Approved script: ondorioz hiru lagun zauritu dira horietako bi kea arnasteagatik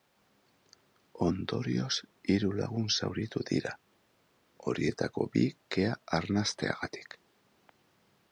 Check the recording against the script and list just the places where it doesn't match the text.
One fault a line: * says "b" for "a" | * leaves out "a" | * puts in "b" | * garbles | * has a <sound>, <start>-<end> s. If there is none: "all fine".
all fine